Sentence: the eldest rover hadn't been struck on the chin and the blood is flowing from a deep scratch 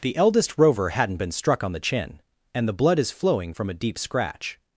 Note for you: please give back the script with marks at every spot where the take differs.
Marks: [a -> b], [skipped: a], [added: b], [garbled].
the eldest rover hadn't been struck on the chin and the blood is flowing from a deep scratch